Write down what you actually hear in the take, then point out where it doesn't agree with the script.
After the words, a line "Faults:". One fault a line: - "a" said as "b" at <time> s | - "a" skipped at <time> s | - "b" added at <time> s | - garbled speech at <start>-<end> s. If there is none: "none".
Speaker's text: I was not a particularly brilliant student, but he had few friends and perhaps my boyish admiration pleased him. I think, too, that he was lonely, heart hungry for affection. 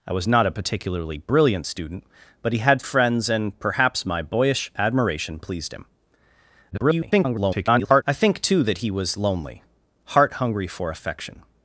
I was not a particularly brilliant student, but he had friends and perhaps my boyish admiration pleased him. [garbled] I think, too, that he was lonely, heart hungry for affection.
Faults:
- "few" skipped at 2.8 s
- garbled speech at 6.7-8.0 s